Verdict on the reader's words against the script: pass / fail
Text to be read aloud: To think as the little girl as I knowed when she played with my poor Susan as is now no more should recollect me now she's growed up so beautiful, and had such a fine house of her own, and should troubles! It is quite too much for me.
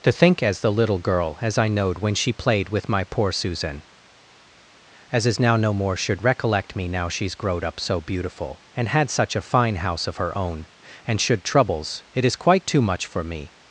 pass